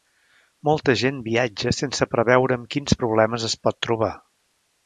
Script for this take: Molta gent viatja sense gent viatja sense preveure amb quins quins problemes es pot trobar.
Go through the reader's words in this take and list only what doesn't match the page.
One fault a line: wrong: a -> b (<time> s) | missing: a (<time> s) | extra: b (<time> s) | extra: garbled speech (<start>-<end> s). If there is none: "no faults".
missing: gent viatja sense (2.1 s)
missing: quins (3.0 s)